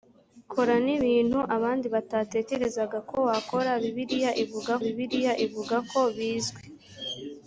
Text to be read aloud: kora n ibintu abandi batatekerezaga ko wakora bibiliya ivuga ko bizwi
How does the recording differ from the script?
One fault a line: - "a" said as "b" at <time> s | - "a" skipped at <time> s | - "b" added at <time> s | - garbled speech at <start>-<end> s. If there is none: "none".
- "bibiliya ivuga" added at 4.8 s